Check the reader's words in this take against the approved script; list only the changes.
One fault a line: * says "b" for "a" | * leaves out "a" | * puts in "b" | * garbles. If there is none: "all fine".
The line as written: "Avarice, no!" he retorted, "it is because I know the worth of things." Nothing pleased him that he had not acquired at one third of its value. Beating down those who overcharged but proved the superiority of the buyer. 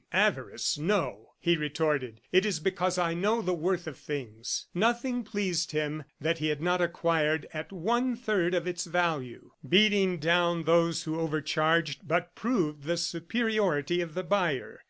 all fine